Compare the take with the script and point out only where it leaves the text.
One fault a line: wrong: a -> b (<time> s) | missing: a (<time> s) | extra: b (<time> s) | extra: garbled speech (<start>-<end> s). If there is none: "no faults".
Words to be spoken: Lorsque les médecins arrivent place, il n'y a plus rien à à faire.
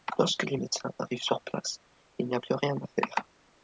extra: sur (1.2 s)
missing: à (2.9 s)